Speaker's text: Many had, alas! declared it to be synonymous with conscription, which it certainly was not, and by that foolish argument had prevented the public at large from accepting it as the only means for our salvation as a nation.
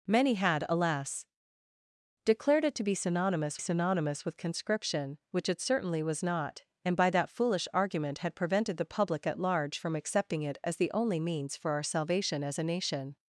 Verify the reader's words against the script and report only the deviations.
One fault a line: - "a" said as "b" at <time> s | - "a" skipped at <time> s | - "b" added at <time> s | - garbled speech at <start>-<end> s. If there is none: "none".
- "synonymous" added at 3.6 s